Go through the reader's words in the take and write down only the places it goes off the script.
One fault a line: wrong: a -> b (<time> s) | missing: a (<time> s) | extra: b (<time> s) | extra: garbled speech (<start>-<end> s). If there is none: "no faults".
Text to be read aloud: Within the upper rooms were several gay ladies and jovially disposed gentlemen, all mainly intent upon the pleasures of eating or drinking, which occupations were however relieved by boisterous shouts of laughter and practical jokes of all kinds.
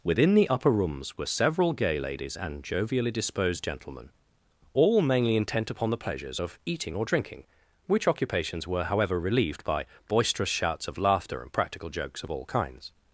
no faults